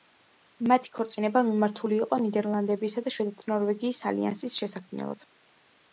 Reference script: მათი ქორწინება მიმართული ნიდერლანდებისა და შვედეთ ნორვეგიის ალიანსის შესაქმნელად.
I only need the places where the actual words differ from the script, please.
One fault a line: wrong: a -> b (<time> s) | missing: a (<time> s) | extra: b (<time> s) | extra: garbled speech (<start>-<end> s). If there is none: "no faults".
extra: იყო (2.0 s)